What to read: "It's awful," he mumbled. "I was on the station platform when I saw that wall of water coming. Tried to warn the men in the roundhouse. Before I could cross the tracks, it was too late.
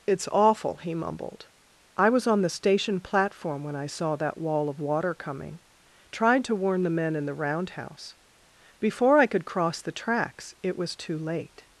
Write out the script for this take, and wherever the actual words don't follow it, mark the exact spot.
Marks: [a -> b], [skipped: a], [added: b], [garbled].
"It's awful," he mumbled. "I was on the station platform when I saw that wall of water coming. Tried to warn the men in the roundhouse. Before I could cross the tracks, it was too late.